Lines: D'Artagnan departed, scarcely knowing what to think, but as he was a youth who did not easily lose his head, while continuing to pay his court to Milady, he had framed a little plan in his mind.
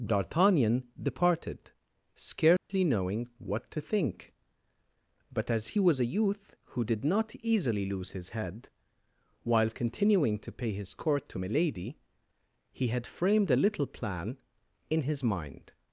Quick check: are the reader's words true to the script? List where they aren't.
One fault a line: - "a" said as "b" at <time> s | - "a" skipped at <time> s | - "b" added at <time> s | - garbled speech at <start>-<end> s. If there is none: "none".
none